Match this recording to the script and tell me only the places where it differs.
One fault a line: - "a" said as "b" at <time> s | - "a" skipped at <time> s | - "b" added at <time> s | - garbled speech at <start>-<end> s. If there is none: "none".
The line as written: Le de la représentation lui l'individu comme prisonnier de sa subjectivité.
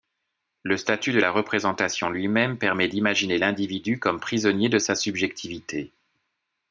- "statut" added at 0.8 s
- "même permet d'imaginer" added at 2.3 s